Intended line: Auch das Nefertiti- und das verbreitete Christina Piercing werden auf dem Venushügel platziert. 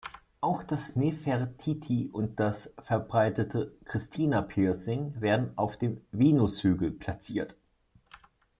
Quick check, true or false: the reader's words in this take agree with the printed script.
true